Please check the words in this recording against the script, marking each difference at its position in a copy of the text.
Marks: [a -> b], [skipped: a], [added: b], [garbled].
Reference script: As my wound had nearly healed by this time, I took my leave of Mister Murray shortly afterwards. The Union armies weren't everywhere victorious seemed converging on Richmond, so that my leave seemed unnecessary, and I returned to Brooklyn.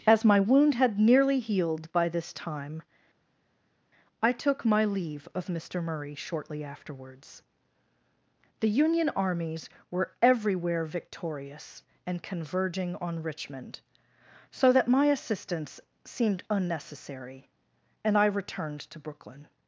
As my wound had nearly healed by this time, I took my leave of Mister Murray shortly afterwards. The Union armies [weren't -> were] everywhere victorious [seemed -> and] converging on Richmond, so that my [leave -> assistance] seemed unnecessary, and I returned to Brooklyn.